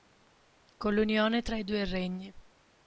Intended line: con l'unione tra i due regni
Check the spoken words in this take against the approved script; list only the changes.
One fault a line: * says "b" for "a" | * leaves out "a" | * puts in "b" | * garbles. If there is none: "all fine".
all fine